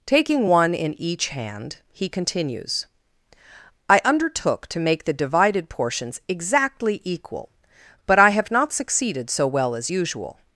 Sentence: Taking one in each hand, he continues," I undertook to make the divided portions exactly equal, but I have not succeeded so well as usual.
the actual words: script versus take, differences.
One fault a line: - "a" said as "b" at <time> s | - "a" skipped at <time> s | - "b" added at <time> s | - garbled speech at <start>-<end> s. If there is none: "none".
none